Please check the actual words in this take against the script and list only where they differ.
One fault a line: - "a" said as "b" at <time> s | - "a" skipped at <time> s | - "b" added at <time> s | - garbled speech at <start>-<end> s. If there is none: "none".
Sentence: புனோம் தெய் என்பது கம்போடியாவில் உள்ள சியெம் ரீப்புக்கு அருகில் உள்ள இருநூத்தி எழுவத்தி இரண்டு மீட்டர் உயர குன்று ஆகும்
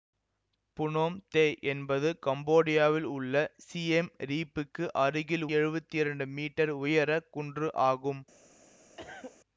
- "உள்ள இருநூத்தி" skipped at 5.5 s